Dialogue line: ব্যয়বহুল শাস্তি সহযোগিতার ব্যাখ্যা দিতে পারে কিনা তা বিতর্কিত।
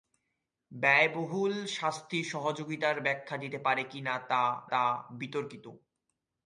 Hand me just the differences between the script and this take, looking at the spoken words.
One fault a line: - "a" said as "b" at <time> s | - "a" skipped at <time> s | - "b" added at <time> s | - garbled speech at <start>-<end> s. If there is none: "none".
- "তা" added at 4.7 s